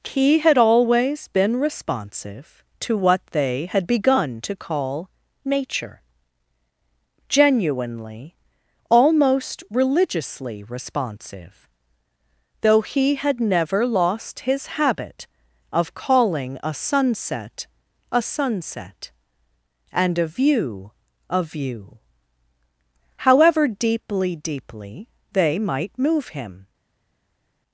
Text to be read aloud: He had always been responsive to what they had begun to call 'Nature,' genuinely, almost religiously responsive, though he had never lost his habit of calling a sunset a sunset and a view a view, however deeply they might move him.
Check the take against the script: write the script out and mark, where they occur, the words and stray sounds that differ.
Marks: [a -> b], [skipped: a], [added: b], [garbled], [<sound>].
He had always been responsive to what they had begun to call 'Nature,' genuinely, almost religiously responsive, though he had never lost his habit of calling a sunset a sunset and a view a view, however deeply [added: deeply] they might move him.